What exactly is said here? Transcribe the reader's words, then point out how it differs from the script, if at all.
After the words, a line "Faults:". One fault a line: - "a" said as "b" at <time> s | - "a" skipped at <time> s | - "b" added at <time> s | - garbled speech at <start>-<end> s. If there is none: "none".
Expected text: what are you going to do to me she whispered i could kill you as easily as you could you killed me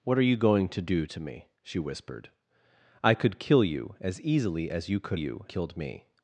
what are you going to do to me she whispered i could kill you as easily as you could you killed me
Faults:
none